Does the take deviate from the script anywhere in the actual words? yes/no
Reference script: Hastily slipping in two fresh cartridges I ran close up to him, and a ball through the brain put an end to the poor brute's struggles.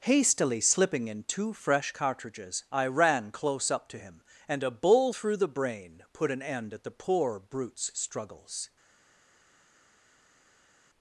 yes